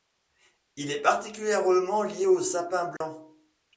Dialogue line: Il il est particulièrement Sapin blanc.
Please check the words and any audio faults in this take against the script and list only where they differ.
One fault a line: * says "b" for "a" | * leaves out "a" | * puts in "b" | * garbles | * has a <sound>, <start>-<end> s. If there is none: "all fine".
* leaves out "il"
* puts in "lié au"
* has a dropout, 3.0-3.0 s